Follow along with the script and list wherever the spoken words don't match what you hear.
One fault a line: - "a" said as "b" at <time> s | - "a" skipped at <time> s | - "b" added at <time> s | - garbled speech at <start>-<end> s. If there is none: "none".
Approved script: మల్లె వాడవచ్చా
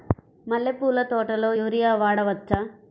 - "పూల తోటలో యూరియా" added at 0.7 s